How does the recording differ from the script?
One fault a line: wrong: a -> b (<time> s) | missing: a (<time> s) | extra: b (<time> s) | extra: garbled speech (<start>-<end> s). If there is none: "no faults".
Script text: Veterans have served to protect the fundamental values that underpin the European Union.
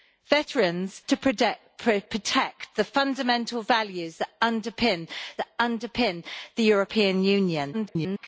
missing: have served (1.0 s)
extra: that underpin (5.4 s)
extra: garbled speech (7.7-8.3 s)